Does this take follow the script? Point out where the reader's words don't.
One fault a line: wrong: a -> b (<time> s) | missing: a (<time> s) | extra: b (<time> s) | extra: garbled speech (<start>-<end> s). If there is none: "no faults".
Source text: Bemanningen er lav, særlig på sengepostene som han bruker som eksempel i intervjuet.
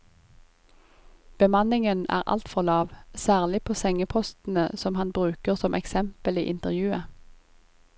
extra: altfor (2.2 s)